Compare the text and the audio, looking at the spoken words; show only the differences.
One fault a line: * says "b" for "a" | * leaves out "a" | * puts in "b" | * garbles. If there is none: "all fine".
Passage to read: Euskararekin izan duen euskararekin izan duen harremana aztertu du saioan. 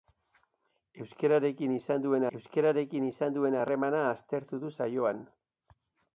all fine